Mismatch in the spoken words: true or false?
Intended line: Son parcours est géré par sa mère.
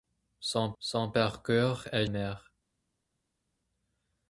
true